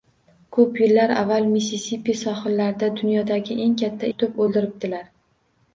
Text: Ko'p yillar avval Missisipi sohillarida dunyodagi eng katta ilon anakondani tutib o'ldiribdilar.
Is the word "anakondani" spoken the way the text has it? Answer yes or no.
no